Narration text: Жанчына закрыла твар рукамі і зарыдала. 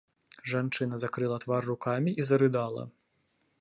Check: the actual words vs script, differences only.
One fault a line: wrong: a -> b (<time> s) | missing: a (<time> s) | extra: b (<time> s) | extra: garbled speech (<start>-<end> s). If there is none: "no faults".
no faults